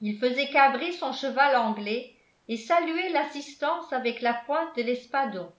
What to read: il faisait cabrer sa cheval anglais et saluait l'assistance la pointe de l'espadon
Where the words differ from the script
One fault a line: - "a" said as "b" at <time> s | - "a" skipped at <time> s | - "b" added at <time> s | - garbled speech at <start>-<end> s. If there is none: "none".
- "sa" said as "son" at 0.9 s
- "avec" added at 3.9 s